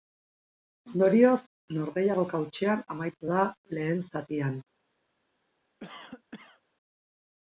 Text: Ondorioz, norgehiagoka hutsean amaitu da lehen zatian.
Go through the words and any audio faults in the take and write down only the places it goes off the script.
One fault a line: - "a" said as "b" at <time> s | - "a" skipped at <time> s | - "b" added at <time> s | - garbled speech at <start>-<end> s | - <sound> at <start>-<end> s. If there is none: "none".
- cough at 5.8-6.6 s